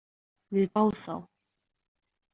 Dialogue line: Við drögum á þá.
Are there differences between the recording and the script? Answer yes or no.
yes